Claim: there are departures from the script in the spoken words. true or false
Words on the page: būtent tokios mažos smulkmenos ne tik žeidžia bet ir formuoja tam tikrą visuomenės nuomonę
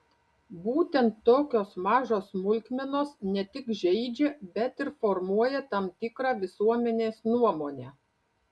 false